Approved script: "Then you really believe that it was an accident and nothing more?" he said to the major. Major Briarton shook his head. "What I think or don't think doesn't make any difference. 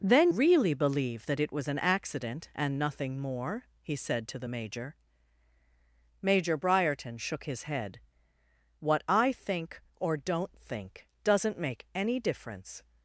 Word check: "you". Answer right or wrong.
wrong